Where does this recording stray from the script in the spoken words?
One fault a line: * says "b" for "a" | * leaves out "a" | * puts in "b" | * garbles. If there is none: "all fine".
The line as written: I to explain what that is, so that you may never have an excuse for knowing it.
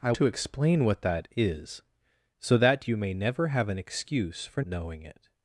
all fine